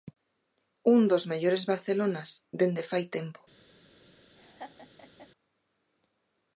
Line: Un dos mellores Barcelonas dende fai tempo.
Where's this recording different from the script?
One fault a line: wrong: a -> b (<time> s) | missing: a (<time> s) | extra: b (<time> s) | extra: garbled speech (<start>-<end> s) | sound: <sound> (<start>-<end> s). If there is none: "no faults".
sound: laugh (4.4-5.3 s)